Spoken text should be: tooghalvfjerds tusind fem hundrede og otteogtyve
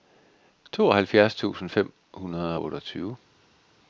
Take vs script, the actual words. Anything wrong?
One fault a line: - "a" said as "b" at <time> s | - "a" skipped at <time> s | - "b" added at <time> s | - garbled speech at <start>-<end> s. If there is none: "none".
none